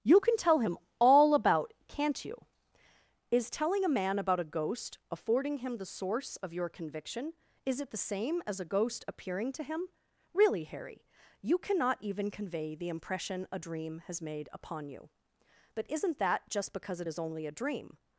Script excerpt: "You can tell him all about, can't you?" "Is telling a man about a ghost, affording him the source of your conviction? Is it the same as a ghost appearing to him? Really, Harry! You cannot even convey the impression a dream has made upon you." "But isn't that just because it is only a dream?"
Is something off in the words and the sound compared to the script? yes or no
no